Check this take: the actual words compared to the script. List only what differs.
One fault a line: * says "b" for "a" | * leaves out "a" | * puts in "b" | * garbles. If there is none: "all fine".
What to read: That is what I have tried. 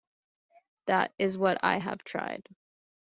all fine